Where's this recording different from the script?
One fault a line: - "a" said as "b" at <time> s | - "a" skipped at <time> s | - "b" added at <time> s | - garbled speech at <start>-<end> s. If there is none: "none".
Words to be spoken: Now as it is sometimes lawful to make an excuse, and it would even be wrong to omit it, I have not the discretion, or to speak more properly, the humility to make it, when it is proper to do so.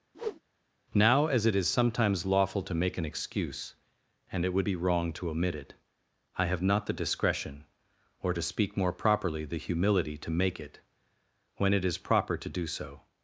- "even" skipped at 4.7 s